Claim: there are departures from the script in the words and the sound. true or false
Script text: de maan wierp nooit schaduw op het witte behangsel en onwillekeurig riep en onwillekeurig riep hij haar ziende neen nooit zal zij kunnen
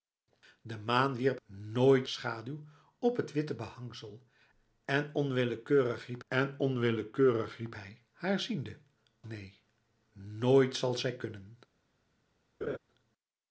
true